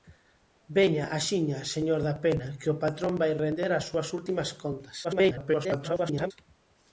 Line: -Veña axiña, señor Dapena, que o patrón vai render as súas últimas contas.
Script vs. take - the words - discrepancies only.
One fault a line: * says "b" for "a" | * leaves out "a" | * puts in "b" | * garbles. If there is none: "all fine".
* garbles